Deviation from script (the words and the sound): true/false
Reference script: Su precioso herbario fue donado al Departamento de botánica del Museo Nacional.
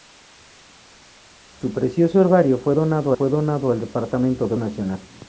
true